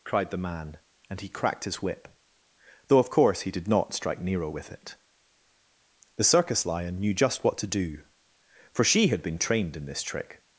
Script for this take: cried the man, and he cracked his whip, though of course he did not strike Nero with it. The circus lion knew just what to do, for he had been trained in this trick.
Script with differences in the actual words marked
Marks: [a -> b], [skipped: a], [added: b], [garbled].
cried the man, and he cracked his whip, though of course he did not strike Nero with it. The circus lion knew just what to do, for [he -> she] had been trained in this trick.